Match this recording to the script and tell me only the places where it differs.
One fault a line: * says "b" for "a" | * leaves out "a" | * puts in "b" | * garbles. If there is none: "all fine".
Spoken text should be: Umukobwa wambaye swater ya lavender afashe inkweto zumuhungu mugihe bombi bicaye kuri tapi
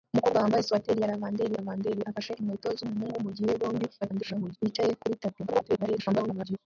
* puts in "lavender"
* garbles
* garbles